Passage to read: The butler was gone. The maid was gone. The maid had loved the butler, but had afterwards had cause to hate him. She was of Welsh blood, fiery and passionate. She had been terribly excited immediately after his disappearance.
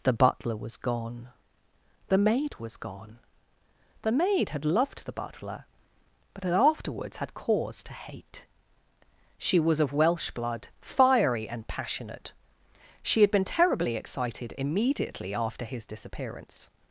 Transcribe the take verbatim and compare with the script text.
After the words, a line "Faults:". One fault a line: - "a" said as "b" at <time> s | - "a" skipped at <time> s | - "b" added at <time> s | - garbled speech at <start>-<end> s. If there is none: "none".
The butler was gone. The maid was gone. The maid had loved the butler, but had afterwards had cause to hate. She was of Welsh blood, fiery and passionate. She had been terribly excited immediately after his disappearance.
Faults:
- "him" skipped at 8.4 s